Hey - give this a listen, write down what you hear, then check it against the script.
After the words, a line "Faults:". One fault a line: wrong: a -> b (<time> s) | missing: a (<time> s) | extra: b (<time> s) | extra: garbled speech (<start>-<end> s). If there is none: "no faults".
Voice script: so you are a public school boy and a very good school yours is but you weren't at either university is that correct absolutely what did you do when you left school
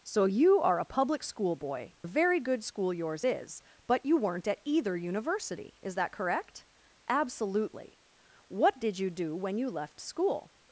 so you are a public school boy a very good school yours is but you weren't at either university is that correct absolutely what did you do when you left school
Faults:
missing: and (1.9 s)